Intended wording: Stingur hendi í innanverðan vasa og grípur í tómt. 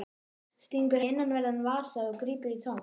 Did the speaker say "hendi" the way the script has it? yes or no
no